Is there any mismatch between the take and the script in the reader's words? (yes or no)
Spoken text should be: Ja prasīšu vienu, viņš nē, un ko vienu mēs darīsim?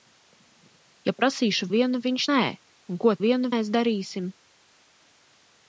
no